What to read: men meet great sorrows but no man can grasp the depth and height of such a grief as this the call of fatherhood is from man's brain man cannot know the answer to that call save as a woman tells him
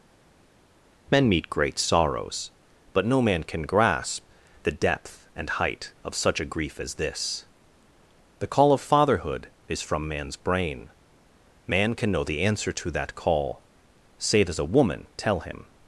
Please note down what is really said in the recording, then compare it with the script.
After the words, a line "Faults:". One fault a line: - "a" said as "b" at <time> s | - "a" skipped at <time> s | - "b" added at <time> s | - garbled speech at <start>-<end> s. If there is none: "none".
men meet great sorrows but no man can grasp the depth and height of such a grief as this the call of fatherhood is from man's brain man can know the answer to that call save as a woman tell him
Faults:
- "cannot" said as "can" at 11.9 s
- "tells" said as "tell" at 15.1 s